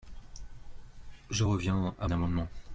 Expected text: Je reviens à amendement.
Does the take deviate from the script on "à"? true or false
false